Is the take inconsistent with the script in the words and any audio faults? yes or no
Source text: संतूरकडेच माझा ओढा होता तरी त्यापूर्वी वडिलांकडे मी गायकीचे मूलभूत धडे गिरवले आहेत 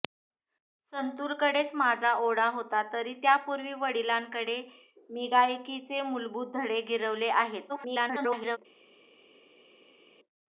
yes